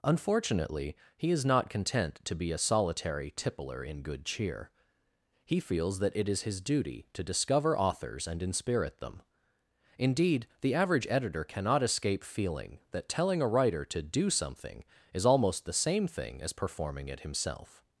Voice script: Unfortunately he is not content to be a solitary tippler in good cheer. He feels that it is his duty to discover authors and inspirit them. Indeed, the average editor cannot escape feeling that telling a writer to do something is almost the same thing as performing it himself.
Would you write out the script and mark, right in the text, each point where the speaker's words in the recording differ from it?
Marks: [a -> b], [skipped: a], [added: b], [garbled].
Unfortunately he is not content to be a solitary tippler in good cheer. He feels that it is his duty to discover authors and inspirit them. Indeed, the average editor cannot escape feeling that telling a writer to do something is almost the same thing as performing it himself.